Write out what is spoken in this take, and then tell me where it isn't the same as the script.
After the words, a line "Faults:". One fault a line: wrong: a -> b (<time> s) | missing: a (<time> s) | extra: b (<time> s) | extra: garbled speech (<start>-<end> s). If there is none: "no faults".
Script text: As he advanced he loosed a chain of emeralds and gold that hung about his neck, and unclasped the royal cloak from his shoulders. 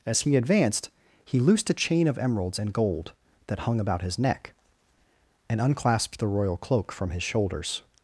As he advanced he loosed a chain of emeralds and gold that hung about his neck, and unclasped the royal cloak from his shoulders.
Faults:
no faults